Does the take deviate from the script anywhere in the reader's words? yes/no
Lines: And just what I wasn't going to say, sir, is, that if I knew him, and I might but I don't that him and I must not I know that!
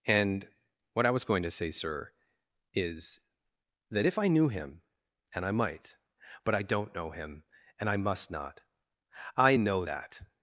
yes